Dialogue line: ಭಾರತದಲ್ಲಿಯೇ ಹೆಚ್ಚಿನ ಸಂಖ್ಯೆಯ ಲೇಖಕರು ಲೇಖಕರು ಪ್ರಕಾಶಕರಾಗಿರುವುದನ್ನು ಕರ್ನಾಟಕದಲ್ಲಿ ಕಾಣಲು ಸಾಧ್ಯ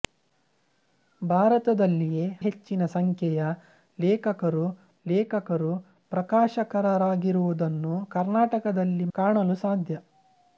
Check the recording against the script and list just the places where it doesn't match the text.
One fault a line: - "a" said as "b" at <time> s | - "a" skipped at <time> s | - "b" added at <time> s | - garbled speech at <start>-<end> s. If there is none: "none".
none